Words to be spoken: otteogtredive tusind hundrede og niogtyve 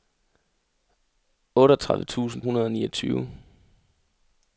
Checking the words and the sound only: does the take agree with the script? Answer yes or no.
yes